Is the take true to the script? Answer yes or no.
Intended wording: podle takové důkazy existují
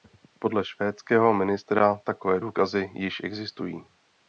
no